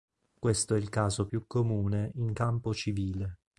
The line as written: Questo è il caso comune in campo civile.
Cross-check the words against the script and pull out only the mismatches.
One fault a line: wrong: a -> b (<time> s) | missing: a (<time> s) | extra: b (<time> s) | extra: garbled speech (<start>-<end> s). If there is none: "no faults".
extra: più (1.2 s)